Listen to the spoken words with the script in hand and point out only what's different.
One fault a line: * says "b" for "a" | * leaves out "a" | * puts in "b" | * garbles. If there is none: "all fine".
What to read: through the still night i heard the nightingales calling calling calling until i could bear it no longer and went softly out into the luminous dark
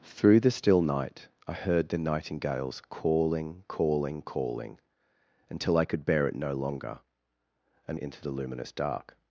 * leaves out "went softly out"